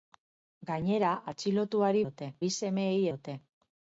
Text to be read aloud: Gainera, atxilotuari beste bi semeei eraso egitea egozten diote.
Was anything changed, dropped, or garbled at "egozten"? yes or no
yes